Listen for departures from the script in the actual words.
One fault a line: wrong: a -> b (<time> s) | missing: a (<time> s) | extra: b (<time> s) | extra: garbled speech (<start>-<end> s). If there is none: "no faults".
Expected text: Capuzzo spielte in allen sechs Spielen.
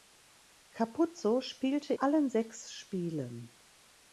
missing: in (1.9 s)